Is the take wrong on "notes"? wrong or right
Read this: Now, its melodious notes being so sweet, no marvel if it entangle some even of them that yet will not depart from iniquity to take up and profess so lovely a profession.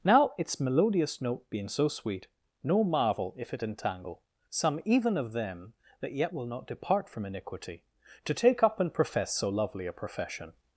wrong